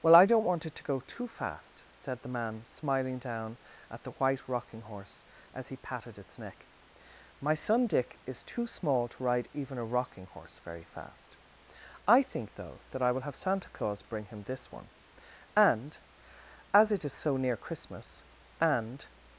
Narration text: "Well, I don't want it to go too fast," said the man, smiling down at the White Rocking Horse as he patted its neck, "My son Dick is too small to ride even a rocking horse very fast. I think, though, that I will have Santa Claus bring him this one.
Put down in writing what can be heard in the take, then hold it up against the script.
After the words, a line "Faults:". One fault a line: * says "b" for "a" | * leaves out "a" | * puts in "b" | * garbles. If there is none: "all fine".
"Well, I don't want it to go too fast," said the man, smiling down at the White Rocking Horse as he patted its neck, "My son Dick is too small to ride even a rocking horse very fast. I think, though, that I will have Santa Claus bring him this one. And, as it is so near Christmas, and
Faults:
* puts in "And as it is so near Christmas and"